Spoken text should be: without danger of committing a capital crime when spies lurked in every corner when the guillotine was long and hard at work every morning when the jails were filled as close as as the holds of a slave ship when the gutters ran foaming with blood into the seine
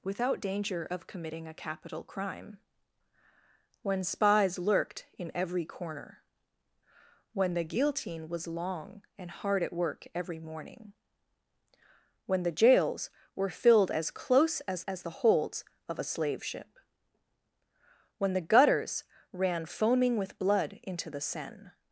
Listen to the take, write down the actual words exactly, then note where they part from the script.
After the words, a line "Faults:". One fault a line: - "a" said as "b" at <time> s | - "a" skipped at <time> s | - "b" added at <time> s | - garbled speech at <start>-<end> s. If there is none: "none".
without danger of committing a capital crime when spies lurked in every corner when the guillotine was long and hard at work every morning when the jails were filled as close as as the holds of a slave ship when the gutters ran foaming with blood into the seine
Faults:
none